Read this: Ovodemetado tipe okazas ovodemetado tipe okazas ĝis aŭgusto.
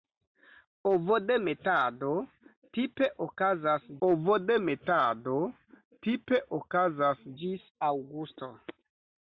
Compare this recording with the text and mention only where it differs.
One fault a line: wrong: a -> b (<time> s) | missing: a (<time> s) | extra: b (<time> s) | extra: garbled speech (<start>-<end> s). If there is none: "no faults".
no faults